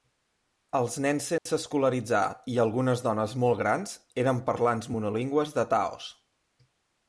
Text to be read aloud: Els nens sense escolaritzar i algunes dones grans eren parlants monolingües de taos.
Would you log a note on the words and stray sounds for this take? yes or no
yes